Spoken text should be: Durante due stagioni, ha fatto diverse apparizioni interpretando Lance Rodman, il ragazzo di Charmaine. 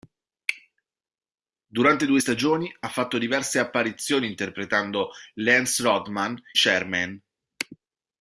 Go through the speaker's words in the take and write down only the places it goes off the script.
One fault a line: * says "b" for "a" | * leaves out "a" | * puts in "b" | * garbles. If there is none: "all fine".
* leaves out "il ragazzo di"